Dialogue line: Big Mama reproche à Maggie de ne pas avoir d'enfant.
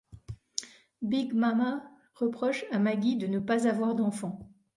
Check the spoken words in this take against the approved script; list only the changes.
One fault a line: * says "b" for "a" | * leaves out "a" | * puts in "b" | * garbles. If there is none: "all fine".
all fine